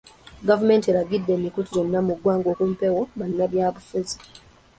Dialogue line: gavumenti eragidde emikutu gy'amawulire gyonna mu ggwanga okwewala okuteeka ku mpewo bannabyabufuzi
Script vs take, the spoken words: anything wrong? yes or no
yes